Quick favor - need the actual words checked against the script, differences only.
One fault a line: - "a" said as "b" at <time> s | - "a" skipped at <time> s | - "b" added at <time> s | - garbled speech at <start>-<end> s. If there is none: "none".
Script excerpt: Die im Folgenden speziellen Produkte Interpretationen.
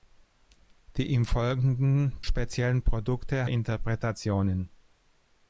none